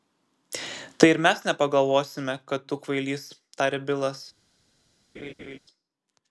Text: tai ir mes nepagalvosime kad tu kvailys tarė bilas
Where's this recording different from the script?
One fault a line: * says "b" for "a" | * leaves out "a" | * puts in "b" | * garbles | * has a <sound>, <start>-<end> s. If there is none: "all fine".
* has a laugh, 5.1-5.6 s